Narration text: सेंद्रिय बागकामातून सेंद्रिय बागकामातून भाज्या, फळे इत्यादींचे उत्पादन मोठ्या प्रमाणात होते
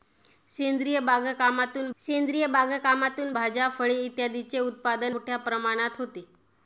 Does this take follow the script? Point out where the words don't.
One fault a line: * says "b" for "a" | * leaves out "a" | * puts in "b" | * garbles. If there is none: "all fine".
all fine